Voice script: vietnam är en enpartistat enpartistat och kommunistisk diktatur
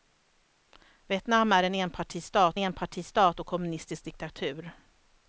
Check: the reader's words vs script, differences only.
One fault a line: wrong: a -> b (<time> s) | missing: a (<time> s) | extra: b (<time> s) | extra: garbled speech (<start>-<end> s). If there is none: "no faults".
no faults